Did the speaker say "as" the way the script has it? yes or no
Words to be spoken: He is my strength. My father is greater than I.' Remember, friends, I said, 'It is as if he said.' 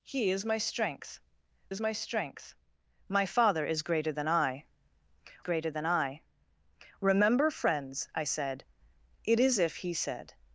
no